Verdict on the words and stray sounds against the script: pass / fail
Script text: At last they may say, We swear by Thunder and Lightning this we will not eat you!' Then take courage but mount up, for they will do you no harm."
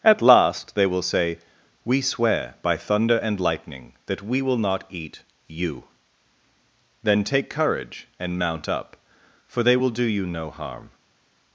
fail